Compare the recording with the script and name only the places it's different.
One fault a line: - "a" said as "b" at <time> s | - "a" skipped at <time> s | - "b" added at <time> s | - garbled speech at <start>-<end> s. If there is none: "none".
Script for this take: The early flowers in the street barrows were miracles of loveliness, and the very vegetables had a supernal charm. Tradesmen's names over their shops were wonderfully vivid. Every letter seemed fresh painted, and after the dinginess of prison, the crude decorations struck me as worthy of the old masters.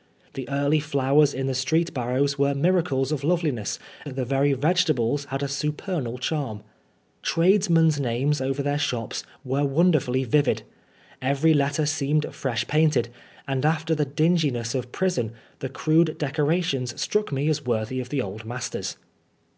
- "and" skipped at 3.8 s